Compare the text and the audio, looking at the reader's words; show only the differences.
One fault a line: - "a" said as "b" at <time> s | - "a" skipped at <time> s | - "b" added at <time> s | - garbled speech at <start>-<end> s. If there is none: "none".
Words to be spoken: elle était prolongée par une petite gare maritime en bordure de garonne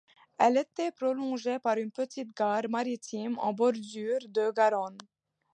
none